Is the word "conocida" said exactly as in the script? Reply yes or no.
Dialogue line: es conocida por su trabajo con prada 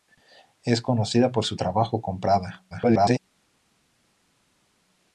yes